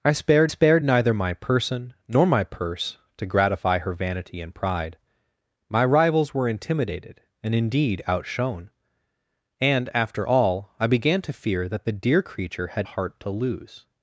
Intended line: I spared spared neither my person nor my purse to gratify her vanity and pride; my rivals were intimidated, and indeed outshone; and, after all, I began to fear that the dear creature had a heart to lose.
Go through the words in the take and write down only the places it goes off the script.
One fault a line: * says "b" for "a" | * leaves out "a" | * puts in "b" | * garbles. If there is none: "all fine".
all fine